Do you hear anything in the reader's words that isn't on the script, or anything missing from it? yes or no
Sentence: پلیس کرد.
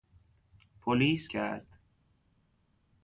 no